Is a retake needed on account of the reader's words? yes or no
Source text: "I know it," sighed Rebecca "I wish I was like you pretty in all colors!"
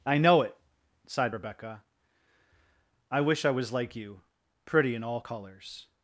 no